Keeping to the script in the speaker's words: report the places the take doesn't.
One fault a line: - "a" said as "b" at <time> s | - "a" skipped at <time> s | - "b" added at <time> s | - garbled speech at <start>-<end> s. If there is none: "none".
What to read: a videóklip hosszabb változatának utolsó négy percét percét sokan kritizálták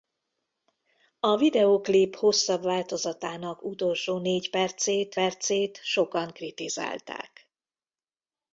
none